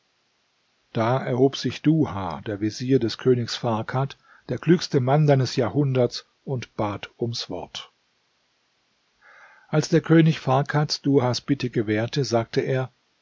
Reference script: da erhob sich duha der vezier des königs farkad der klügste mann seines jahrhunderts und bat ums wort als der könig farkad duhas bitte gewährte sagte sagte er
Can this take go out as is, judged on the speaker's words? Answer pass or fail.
fail